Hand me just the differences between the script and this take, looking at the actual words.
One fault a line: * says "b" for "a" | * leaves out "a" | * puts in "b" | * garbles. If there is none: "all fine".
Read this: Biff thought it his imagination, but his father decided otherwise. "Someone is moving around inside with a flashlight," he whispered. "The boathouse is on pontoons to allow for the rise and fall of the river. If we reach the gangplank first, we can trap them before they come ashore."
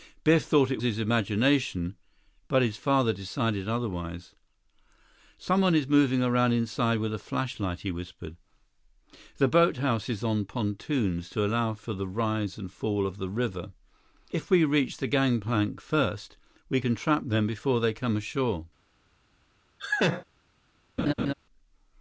all fine